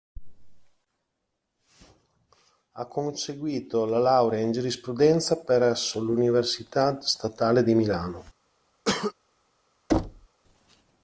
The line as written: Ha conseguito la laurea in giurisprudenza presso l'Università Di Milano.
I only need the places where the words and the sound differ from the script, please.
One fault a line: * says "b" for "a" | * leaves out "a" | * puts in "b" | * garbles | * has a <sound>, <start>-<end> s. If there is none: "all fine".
* puts in "Statale"
* has a cough, 8.9-9.1 s
* has a thud, 9.9-10.3 s